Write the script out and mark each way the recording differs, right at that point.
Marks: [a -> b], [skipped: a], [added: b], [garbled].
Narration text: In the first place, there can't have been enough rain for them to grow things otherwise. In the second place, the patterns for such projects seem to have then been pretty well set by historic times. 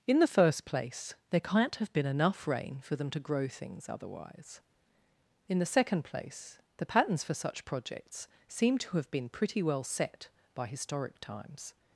In the first place, there can't have been enough rain for them to grow things otherwise. In the second place, the patterns for such projects seem to have [skipped: then] been pretty well set by historic times.